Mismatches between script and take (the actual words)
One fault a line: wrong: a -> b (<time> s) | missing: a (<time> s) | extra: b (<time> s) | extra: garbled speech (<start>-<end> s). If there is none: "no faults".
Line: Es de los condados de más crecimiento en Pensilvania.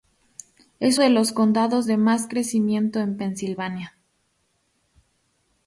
no faults